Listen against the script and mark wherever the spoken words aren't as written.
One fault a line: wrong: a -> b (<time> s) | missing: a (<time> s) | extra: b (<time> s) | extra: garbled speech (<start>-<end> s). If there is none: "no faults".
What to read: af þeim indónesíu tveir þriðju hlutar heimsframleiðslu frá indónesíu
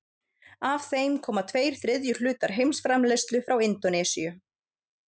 wrong: indónesíu -> koma (1.3 s)